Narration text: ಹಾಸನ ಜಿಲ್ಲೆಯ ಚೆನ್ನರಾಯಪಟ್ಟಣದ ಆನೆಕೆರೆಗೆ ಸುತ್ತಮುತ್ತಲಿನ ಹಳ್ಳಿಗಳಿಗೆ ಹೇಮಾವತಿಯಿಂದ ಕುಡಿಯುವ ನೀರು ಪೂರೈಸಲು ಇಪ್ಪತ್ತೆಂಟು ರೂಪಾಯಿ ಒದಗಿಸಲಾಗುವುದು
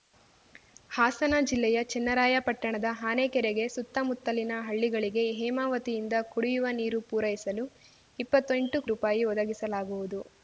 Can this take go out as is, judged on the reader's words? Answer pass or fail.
pass